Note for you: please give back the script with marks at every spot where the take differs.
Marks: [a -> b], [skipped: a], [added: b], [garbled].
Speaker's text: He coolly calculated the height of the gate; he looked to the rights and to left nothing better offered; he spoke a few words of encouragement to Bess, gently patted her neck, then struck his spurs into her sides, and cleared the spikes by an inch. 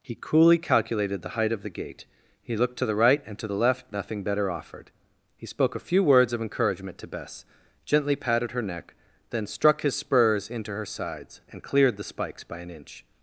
He coolly calculated the height of the gate; he looked to the [rights -> right] and to [added: the] left nothing better offered; he spoke a few words of encouragement to Bess, gently patted her neck, then struck his spurs into her sides, and cleared the spikes by an inch.